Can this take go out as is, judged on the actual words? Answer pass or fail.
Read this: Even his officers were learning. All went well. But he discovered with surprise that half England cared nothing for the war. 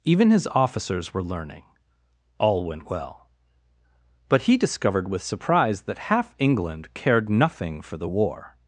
pass